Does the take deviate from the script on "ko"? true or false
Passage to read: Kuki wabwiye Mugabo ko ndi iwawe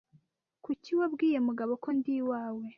false